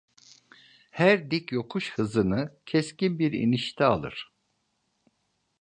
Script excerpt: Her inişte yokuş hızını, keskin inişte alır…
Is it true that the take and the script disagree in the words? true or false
true